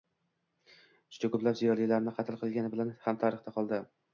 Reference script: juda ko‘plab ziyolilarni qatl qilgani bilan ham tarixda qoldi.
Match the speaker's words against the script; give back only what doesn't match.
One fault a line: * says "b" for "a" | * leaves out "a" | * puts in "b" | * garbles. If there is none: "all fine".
all fine